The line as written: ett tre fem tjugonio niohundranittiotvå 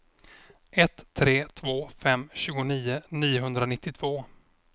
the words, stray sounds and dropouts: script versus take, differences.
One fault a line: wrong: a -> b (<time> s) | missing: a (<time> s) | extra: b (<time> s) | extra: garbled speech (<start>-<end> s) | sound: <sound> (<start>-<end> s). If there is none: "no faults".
extra: två (1.5 s)